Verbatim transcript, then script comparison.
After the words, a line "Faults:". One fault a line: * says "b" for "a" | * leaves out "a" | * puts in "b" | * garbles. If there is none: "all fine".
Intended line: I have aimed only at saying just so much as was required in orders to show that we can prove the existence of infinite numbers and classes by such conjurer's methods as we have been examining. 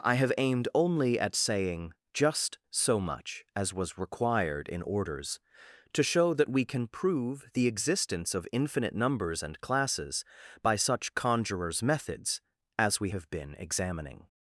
I have aimed only at saying just so much as was required in orders to show that we can prove the existence of infinite numbers and classes by such conjurer's methods as we have been examining.
Faults:
all fine